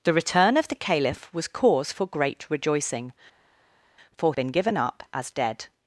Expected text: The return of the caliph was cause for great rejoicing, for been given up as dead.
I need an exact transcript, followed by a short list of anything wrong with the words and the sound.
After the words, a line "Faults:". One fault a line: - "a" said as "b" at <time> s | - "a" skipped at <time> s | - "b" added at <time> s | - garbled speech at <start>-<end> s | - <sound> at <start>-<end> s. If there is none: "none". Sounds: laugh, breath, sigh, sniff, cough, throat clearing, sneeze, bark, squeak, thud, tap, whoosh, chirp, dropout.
The return of the caliph was cause for great rejoicing, for been given up as dead.
Faults:
none